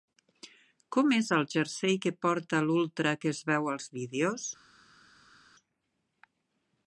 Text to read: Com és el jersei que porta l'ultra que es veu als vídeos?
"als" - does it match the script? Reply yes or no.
yes